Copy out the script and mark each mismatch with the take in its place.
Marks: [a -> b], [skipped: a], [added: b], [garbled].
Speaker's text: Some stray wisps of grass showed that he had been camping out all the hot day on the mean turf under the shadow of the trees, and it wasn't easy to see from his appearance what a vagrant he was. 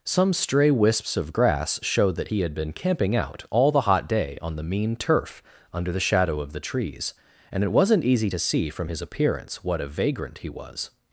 Some stray wisps of grass showed that he had been camping out all the hot day on the mean turf under the shadow of the trees, and it wasn't easy to see from his appearance what a vagrant he was.